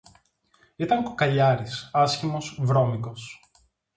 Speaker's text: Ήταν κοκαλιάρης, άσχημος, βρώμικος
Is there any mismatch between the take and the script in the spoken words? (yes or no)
no